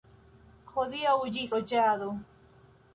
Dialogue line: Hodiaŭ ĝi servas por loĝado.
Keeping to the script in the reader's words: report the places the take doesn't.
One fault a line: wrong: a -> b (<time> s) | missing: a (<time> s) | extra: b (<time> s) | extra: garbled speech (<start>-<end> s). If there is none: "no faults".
missing: servas por (1.4 s)